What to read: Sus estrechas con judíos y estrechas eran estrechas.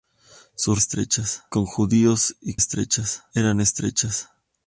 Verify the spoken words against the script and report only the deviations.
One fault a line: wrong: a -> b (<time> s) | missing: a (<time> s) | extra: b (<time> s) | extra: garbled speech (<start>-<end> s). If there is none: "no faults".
no faults